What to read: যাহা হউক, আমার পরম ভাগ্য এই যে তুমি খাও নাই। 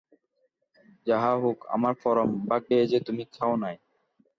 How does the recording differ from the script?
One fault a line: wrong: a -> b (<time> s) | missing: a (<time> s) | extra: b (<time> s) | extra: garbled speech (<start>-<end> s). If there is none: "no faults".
no faults